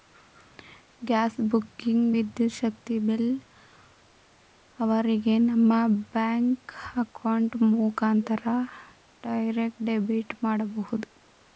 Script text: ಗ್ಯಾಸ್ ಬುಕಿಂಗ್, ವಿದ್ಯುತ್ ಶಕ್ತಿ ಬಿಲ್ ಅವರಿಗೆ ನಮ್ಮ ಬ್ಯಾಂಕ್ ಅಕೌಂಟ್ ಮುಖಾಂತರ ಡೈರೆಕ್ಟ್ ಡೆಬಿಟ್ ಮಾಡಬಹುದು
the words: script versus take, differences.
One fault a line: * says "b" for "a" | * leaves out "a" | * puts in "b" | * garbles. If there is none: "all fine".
all fine